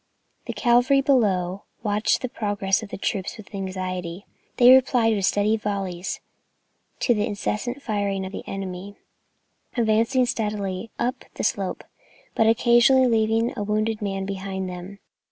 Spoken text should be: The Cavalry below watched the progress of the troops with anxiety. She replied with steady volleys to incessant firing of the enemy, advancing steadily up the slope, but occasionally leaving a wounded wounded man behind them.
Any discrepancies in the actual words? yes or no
yes